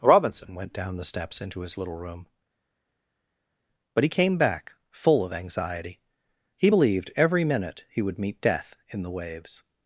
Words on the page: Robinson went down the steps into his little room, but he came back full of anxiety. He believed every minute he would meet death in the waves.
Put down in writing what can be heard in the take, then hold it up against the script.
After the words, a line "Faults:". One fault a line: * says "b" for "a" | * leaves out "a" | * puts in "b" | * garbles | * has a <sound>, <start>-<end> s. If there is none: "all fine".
Robinson went down the steps into his little room, but he came back full of anxiety. He believed every minute he would meet death in the waves.
Faults:
all fine